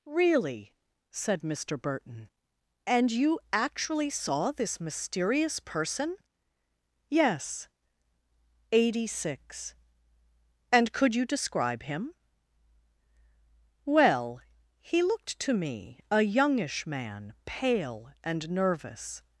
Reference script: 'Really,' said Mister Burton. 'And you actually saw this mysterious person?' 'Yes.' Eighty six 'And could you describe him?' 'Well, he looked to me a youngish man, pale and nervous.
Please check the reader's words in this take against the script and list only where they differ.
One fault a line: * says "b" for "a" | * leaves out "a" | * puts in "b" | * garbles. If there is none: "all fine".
all fine